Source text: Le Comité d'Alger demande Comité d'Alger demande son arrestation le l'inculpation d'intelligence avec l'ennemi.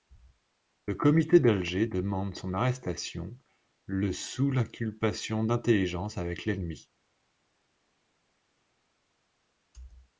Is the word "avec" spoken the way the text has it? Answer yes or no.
yes